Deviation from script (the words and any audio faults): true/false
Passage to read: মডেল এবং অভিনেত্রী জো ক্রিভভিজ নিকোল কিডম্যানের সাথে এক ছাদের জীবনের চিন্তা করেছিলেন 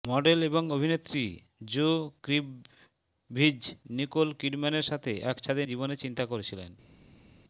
false